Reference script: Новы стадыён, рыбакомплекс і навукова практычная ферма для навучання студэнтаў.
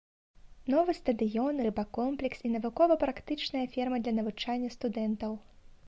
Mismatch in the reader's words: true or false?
false